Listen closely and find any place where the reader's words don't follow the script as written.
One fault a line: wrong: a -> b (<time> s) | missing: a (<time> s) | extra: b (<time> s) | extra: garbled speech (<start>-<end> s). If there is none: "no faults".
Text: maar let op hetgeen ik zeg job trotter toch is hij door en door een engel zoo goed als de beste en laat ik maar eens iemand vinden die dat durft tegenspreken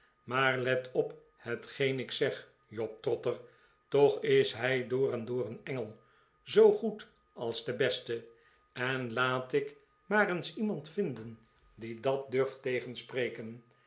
no faults